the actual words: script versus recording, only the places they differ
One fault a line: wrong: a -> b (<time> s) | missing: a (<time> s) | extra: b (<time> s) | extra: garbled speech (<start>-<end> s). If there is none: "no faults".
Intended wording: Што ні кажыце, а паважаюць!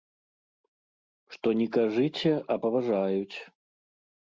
no faults